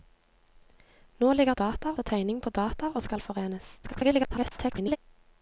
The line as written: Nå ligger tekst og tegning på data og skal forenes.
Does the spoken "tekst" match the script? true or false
false